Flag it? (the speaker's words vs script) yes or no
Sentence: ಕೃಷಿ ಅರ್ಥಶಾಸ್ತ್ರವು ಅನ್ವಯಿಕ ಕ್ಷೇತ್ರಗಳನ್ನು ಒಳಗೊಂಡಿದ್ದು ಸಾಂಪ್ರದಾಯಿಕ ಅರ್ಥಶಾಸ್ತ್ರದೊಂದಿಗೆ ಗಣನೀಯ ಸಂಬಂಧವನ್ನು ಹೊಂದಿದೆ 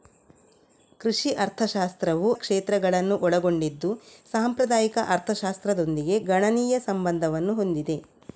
yes